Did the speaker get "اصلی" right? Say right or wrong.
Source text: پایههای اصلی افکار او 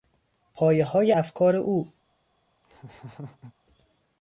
wrong